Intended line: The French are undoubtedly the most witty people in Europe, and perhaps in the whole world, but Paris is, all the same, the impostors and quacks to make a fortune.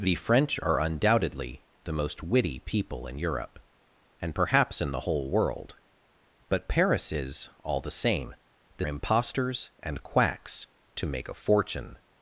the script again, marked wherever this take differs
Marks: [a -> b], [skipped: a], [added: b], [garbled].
The French are undoubtedly the most witty people in Europe, and perhaps in the whole world, but Paris is, all the same, the impostors and quacks to make a fortune.